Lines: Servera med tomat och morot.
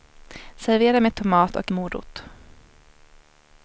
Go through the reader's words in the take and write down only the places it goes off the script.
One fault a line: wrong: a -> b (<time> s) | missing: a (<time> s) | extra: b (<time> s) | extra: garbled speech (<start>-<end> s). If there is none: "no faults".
no faults